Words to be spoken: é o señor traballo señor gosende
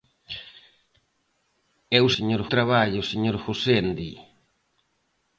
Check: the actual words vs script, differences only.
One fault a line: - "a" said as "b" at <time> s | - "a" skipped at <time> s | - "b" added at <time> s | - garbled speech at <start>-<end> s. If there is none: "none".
none